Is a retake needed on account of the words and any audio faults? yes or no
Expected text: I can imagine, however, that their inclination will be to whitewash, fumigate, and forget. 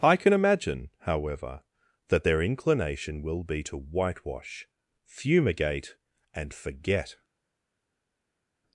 no